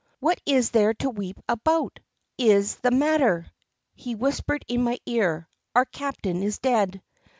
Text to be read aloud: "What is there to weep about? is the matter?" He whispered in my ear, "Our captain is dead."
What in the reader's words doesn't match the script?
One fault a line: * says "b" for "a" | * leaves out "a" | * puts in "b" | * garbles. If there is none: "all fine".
all fine